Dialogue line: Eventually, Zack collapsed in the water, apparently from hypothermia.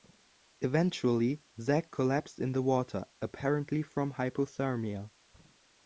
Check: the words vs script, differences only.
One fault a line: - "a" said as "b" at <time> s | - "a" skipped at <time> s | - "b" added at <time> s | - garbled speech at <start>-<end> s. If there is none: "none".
none